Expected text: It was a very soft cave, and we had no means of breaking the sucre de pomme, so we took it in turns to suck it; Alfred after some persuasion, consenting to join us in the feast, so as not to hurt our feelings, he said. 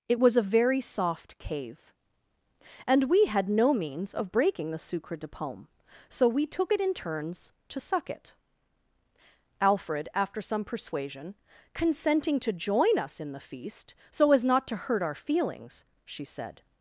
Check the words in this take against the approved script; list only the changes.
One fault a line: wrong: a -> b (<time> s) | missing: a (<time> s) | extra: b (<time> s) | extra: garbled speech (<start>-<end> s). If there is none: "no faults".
wrong: he -> she (16.0 s)